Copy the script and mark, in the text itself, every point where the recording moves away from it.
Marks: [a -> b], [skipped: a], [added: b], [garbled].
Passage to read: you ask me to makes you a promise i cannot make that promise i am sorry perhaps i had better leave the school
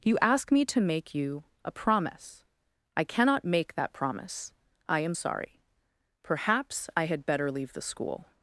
you ask me to [makes -> make] you a promise i cannot make that promise i am sorry perhaps i had better leave the school